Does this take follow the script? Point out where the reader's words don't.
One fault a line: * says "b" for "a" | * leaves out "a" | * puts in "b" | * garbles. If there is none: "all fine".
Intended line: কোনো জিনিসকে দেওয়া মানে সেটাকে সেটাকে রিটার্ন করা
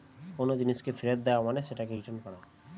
* puts in "ফেরত"
* leaves out "সেটাকে"